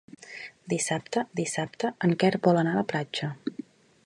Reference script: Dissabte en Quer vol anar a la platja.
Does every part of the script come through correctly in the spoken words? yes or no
no